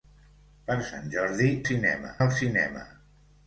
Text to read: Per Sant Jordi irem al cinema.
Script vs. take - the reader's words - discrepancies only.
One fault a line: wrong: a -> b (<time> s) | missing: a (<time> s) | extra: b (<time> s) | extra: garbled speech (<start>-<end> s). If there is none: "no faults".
wrong: irem -> cinema (1.7 s)